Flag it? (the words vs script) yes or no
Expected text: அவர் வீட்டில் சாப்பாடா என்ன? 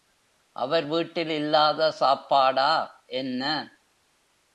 yes